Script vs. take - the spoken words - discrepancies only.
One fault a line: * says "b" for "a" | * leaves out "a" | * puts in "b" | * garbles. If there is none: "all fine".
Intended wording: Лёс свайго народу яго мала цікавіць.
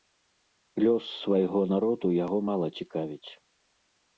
all fine